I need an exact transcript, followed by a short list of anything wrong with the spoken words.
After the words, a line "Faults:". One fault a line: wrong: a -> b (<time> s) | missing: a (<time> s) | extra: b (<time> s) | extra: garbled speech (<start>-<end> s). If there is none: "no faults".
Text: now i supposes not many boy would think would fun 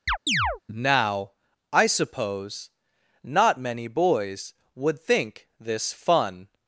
now i suppose not many boys would think this fun
Faults:
wrong: supposes -> suppose (1.9 s)
wrong: boy -> boys (3.9 s)
wrong: would -> this (5.6 s)